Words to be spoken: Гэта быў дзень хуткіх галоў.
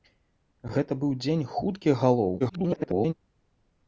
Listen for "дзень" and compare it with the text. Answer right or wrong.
right